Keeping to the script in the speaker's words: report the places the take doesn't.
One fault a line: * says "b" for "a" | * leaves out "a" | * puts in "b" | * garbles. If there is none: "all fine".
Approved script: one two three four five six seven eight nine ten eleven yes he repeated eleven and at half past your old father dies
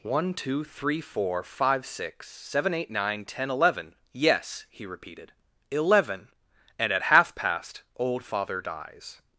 * leaves out "your"